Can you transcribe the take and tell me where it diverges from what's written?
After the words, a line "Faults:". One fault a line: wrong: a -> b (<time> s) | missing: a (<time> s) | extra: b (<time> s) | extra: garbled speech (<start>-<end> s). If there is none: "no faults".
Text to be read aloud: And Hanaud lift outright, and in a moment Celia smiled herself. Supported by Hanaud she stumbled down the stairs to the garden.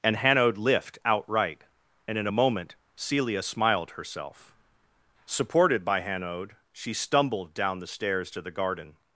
And Hanaud lift outright, and in a moment Celia smiled herself. Supported by Hanaud she stumbled down the stairs to the garden.
Faults:
no faults